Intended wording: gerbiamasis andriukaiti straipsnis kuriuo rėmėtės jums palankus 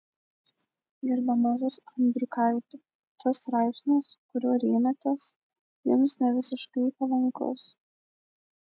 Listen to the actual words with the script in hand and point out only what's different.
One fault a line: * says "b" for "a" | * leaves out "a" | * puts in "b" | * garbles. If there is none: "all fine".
* puts in "tas"
* puts in "nevisiškai"